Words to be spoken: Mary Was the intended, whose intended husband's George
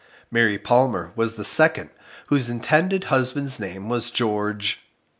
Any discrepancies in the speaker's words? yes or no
yes